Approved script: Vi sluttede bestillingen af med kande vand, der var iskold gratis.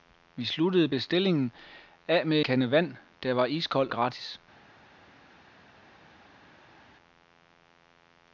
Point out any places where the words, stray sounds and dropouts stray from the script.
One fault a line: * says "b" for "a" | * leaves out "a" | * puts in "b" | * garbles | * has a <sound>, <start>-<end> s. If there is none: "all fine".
all fine